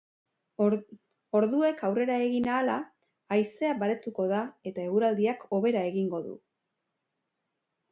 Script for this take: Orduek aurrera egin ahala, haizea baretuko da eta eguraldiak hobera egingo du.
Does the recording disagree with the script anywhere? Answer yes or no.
no